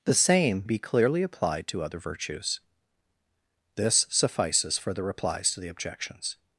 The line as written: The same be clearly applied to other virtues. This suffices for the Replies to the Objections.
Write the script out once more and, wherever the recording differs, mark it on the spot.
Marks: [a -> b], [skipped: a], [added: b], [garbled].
The same be clearly applied to other virtues. This suffices for the Replies to the Objections.